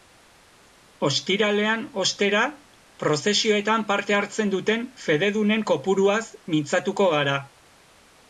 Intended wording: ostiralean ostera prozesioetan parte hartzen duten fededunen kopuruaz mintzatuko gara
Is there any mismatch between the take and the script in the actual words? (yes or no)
no